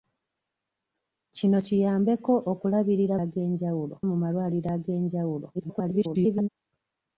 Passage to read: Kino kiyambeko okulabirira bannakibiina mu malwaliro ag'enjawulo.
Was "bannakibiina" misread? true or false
true